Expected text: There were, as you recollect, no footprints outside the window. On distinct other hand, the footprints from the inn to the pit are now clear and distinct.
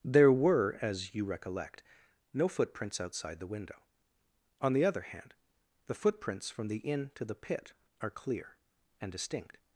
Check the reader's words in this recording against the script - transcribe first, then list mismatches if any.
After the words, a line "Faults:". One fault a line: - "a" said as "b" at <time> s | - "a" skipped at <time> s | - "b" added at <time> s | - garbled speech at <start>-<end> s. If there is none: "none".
There were, as you recollect, no footprints outside the window. On the other hand, the footprints from the inn to the pit are clear and distinct.
Faults:
- "distinct" said as "the" at 4.7 s
- "now" skipped at 8.1 s